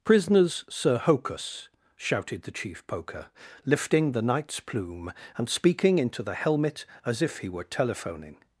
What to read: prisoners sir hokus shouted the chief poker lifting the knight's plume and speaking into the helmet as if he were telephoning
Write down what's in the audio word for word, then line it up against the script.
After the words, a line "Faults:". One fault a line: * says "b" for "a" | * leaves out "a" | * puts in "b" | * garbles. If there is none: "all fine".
prisoners sir hokus shouted the chief poker lifting the knight's plume and speaking into the helmet as if he were telephoning
Faults:
all fine